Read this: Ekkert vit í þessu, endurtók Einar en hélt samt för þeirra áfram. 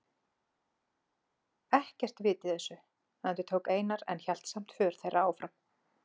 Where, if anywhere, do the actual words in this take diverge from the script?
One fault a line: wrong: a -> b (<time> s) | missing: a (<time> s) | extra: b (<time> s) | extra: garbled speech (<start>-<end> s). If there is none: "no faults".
no faults